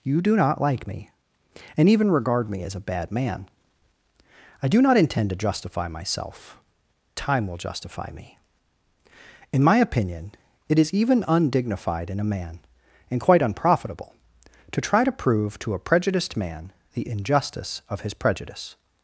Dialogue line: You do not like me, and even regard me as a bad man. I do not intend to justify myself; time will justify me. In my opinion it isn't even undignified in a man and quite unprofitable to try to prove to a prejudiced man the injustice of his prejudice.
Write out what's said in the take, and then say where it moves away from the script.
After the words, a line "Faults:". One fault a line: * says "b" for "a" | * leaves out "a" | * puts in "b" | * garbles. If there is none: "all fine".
You do not like me, and even regard me as a bad man. I do not intend to justify myself; time will justify me. In my opinion it is even undignified in a man and quite unprofitable to try to prove to a prejudiced man the injustice of his prejudice.
Faults:
* says "is" for "isn't"